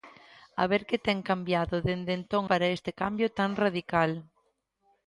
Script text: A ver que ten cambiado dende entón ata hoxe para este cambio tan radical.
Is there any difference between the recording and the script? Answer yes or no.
yes